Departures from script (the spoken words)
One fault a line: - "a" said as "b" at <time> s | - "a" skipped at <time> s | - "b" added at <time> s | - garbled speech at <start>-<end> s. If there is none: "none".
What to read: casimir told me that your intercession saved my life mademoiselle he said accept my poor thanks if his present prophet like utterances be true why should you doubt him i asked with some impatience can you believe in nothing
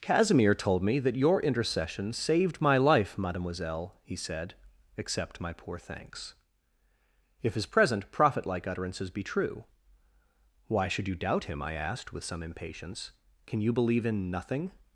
none